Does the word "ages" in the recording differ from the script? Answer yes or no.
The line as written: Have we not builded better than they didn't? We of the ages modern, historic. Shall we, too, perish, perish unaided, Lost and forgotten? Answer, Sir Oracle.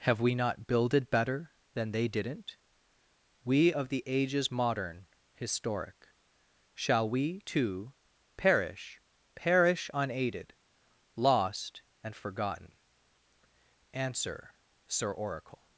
no